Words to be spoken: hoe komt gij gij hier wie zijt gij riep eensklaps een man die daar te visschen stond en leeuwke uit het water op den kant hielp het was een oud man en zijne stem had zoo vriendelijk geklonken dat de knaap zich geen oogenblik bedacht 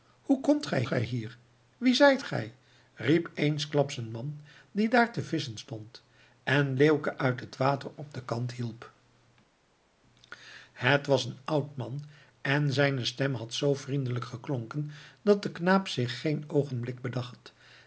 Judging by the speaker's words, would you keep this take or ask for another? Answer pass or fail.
pass